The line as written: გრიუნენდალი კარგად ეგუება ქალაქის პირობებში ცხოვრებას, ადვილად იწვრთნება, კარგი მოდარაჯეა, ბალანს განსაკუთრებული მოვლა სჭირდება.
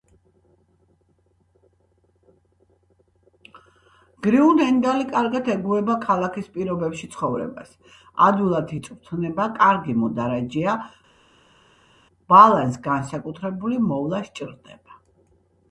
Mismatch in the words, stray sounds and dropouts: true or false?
false